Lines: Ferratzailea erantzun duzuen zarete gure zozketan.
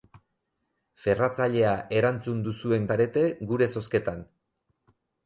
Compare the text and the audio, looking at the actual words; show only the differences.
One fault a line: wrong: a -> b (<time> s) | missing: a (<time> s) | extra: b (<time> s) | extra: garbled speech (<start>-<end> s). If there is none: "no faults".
no faults